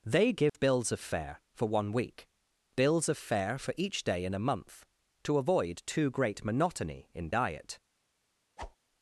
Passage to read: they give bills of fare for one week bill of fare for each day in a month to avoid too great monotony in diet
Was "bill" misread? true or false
true